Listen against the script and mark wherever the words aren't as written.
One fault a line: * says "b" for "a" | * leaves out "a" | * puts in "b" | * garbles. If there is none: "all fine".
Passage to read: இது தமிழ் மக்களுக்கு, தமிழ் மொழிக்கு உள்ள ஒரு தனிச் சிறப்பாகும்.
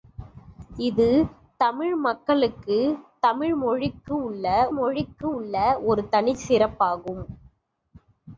* puts in "மொழிக்கு உள்ள"